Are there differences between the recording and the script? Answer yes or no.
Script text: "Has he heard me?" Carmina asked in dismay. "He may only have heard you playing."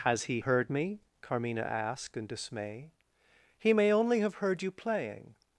no